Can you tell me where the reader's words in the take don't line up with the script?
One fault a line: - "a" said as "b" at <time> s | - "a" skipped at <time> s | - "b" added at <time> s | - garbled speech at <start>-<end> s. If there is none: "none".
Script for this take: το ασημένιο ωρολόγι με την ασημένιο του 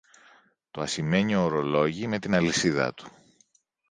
- "ασημένιο" said as "αλυσίδα" at 2.3 s